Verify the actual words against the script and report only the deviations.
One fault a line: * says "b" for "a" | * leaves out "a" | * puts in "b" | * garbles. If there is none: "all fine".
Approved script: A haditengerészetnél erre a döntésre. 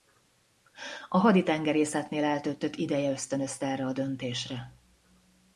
* puts in "eltöltött ideje ösztönözte"